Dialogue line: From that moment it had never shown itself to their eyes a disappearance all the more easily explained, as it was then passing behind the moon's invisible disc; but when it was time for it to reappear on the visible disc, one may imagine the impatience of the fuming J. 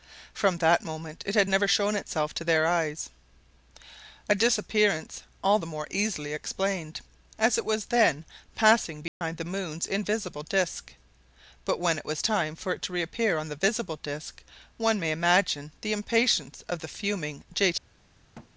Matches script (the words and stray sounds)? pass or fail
fail